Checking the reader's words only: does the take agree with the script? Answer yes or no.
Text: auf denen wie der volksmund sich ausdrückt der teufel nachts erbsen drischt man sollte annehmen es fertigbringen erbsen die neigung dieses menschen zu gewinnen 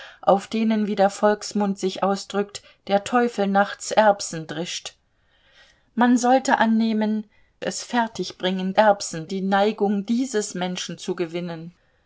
yes